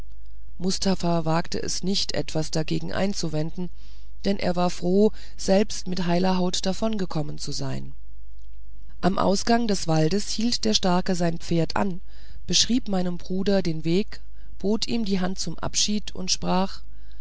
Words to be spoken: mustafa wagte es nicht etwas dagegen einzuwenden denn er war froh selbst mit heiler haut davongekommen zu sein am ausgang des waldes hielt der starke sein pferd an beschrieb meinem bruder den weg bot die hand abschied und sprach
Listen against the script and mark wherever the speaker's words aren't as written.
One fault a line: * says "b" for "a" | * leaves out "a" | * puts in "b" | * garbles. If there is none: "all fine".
* puts in "ihm"
* puts in "zum"